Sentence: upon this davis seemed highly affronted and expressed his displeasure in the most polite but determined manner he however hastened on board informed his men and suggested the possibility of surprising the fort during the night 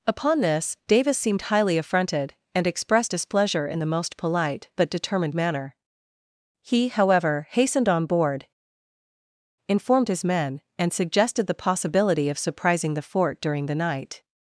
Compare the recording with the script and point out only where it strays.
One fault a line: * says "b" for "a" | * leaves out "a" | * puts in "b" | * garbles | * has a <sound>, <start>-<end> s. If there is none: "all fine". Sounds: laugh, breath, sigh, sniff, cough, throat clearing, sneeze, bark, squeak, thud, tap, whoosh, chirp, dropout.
* leaves out "his"